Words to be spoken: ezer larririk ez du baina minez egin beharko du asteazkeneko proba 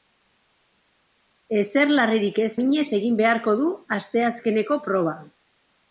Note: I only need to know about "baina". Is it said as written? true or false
false